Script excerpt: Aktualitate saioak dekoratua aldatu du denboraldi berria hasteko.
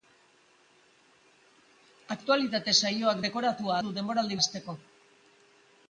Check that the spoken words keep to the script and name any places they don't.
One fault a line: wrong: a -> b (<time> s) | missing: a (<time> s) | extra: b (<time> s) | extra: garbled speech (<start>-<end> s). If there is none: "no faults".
missing: aldatu (3.7 s)
missing: berria (4.4 s)